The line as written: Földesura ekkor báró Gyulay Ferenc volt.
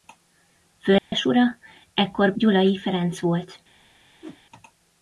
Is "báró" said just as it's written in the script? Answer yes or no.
no